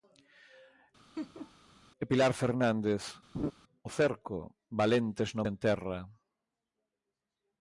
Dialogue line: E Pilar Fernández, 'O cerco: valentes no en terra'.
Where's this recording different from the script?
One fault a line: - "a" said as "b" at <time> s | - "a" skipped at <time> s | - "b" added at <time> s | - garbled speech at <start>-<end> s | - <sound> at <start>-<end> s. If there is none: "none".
- laugh at 1.2-1.5 s
- laugh at 3.3-3.5 s